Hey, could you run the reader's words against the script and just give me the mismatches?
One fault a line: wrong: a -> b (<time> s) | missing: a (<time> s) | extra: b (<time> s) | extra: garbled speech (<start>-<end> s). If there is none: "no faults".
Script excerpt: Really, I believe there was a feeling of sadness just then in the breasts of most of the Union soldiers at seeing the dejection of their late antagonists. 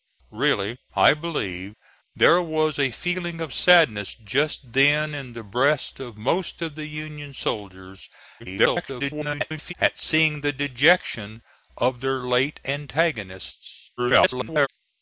extra: garbled speech (8.4-9.7 s)
extra: garbled speech (14.0-14.7 s)